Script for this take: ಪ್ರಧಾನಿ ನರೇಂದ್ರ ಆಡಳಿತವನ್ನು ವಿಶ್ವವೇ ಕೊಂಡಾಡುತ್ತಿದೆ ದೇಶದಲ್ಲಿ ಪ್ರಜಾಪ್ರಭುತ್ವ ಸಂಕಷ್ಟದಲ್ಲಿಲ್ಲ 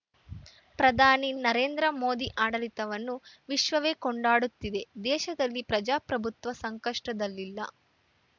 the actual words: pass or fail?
fail